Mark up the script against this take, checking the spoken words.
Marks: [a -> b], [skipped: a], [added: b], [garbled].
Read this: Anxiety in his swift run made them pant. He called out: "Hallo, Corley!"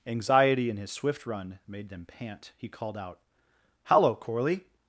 Anxiety in his swift run made them pant. He called out: "Hallo, Corley!"